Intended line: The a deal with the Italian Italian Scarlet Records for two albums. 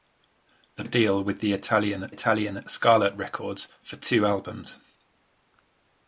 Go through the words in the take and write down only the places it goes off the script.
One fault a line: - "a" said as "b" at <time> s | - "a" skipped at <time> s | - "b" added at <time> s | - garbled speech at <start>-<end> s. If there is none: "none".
none